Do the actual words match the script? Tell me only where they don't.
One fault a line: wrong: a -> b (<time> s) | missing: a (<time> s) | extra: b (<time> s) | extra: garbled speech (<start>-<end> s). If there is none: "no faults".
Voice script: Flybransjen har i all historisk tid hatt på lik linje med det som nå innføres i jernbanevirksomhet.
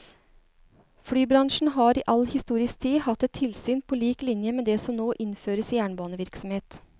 extra: et tilsyn (3.2 s)